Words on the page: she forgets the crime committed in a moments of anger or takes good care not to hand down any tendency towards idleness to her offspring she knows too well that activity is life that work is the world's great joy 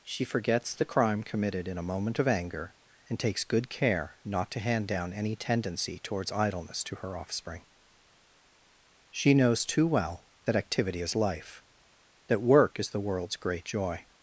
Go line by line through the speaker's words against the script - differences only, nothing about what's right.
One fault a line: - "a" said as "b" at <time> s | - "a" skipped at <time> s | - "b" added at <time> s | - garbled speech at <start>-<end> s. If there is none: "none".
- "moments" said as "moment" at 1.8 s
- "or" said as "and" at 3.1 s